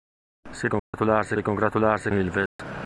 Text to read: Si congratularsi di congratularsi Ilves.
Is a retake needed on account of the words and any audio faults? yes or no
yes